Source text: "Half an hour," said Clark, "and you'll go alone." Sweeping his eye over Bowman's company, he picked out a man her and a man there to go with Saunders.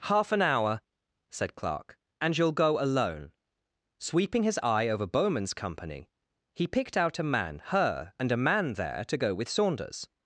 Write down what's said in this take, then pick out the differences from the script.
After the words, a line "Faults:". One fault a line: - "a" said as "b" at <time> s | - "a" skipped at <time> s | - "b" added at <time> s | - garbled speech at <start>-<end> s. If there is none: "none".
"Half an hour," said Clark, "and you'll go alone." Sweeping his eye over Bowman's company, he picked out a man her and a man there to go with Saunders.
Faults:
none